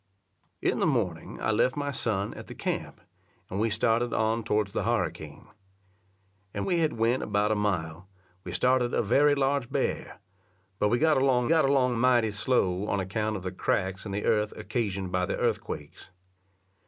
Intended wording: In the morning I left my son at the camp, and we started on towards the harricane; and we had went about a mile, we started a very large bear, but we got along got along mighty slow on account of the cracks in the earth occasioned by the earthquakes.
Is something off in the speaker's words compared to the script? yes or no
no